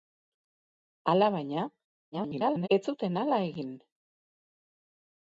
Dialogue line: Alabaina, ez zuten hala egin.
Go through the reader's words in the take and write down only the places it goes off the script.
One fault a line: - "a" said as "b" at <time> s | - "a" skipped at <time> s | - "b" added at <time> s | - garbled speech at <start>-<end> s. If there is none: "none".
- garbled speech at 2.1-2.7 s